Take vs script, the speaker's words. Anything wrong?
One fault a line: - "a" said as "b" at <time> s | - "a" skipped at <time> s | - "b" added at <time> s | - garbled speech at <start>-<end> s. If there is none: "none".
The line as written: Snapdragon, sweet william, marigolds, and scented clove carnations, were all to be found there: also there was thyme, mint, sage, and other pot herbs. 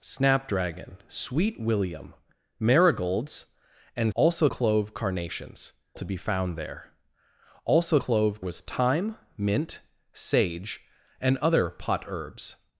- "scented" said as "also" at 4.1 s
- "were all" skipped at 5.7 s
- "there" said as "clove" at 8.0 s